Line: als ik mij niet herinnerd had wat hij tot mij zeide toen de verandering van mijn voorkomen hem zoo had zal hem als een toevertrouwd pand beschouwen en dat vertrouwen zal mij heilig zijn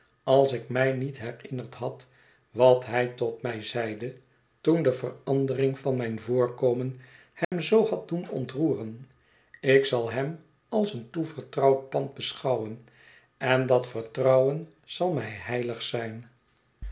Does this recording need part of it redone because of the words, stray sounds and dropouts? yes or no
yes